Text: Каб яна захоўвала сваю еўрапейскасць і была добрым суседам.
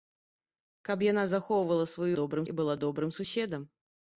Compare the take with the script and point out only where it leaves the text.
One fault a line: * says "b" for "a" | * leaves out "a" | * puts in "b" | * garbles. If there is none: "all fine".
* says "добрым" for "еўрапейскасць"